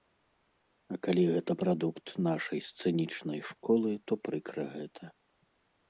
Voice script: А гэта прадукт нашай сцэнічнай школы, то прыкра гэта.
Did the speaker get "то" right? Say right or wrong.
right